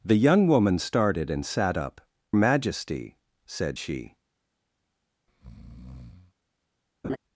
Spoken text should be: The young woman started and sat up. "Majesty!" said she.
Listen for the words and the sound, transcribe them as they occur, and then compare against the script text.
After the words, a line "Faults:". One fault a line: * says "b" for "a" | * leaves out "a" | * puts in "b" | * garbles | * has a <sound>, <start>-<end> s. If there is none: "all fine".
The young woman started and sat up. "Majesty!" said she.
Faults:
* has a breath, 5.3-6.3 s
* has a laugh, 7.0-7.2 s